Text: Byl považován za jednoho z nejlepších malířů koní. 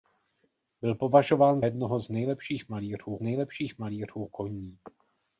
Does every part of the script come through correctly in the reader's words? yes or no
no